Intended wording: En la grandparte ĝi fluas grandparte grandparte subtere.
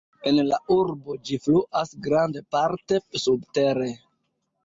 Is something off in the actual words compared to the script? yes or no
yes